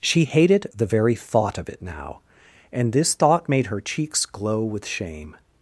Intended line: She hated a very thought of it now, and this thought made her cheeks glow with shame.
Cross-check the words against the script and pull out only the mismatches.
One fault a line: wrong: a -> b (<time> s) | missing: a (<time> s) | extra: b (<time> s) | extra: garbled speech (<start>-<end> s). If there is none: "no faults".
wrong: a -> the (0.8 s)